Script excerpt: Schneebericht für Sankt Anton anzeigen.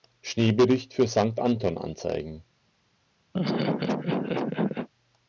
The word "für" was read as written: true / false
true